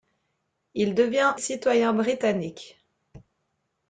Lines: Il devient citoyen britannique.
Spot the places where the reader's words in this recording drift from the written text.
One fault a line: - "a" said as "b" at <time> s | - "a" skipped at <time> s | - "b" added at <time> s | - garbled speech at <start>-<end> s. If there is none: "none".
none